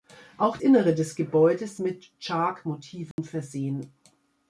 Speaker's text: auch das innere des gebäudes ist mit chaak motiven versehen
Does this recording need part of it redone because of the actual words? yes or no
yes